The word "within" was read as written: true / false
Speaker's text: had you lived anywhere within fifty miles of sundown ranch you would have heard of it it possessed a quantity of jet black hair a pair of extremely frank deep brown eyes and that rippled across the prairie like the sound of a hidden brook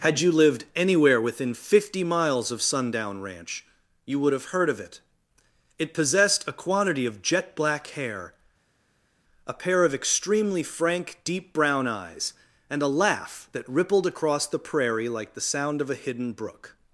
true